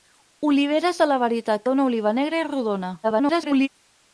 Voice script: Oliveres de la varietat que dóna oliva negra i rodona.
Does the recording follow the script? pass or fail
fail